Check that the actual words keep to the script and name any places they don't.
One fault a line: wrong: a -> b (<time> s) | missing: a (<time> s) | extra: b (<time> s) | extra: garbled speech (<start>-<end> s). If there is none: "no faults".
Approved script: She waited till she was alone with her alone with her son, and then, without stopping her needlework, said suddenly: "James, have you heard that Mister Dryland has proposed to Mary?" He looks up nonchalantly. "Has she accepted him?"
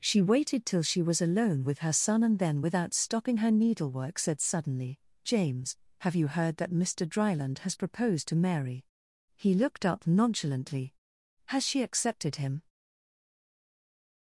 missing: alone with her (1.9 s)
wrong: looks -> looked (9.5 s)